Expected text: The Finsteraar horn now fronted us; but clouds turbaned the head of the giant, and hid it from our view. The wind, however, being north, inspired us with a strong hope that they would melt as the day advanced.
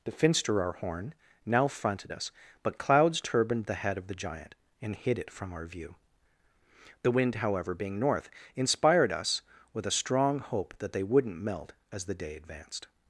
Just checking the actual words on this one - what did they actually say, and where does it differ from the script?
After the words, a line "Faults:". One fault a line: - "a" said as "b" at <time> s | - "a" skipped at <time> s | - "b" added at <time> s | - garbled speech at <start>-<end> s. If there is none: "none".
The Finsteraar horn now fronted us; but clouds turbaned the head of the giant, and hid it from our view. The wind, however, being north, inspired us with a strong hope that they wouldn't melt as the day advanced.
Faults:
- "would" said as "wouldn't" at 11.0 s